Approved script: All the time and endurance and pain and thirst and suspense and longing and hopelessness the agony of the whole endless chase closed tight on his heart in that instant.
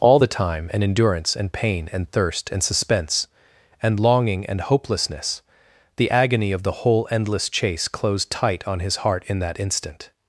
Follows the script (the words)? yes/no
yes